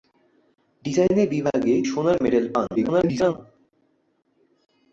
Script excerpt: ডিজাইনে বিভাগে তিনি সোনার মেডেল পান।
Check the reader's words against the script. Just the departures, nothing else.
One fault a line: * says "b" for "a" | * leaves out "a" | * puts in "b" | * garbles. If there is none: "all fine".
* leaves out "তিনি"
* garbles